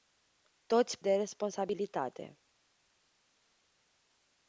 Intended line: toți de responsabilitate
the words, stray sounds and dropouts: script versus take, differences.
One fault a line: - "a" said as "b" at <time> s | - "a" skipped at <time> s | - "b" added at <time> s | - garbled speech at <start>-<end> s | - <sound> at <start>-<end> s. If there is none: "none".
none